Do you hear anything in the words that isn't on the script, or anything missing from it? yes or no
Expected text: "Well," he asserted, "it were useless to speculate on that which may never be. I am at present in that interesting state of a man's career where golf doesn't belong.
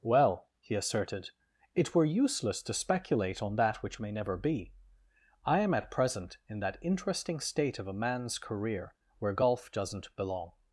no